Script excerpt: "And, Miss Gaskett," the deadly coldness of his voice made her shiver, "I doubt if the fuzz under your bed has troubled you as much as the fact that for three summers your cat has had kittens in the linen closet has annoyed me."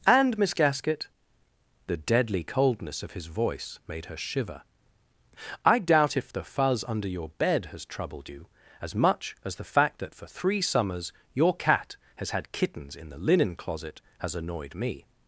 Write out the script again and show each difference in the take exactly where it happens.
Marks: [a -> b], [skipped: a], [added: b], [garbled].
"And, Miss Gaskett," the deadly coldness of his voice made her shiver, "I doubt if the fuzz under your bed has troubled you as much as the fact that for three summers your cat has had kittens in the linen closet has annoyed me."